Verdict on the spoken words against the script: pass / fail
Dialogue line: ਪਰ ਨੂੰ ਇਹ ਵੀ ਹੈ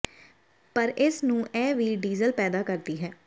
fail